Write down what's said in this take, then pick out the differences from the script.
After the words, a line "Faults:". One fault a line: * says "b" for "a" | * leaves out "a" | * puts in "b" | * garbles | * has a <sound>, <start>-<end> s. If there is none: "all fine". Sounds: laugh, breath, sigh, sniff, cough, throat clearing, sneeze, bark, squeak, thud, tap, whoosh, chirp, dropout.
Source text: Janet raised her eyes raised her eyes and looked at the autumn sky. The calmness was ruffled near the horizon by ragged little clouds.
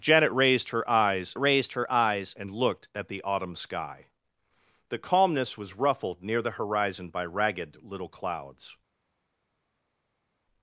Janet raised her eyes raised her eyes and looked at the autumn sky. The calmness was ruffled near the horizon by ragged little clouds.
Faults:
all fine